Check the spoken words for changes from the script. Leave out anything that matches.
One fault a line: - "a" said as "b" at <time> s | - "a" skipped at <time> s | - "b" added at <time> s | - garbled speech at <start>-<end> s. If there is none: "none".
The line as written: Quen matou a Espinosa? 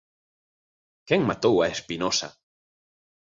none